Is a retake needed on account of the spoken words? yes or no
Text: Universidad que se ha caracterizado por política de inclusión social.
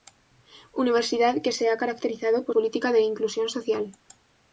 no